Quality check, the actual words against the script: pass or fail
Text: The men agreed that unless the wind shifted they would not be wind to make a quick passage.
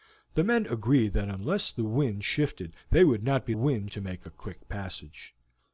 pass